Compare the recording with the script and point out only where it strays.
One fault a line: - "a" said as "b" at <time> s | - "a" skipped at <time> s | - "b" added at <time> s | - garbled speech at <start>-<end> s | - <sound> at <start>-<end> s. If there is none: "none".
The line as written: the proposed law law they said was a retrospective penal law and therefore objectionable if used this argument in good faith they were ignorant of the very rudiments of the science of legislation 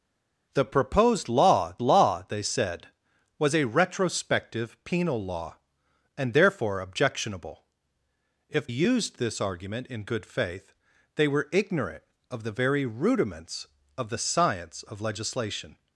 none